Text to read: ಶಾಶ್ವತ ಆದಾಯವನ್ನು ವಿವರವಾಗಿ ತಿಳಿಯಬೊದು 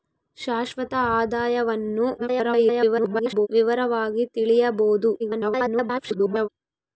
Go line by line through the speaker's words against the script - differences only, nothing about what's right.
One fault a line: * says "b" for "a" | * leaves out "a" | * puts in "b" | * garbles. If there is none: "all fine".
* garbles
* garbles